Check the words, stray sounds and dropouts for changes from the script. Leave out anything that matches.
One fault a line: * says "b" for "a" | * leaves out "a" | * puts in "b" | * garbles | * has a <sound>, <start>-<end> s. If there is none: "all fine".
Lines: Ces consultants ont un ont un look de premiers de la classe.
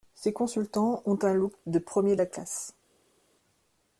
* leaves out "ont un"